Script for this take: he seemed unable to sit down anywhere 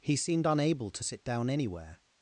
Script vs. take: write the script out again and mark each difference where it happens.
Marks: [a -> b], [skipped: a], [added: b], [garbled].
he seemed unable to sit down anywhere